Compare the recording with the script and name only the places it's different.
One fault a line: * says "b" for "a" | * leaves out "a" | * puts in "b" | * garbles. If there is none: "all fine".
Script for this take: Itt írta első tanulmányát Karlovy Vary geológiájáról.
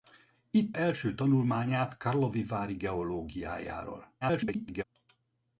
* leaves out "írta"
* garbles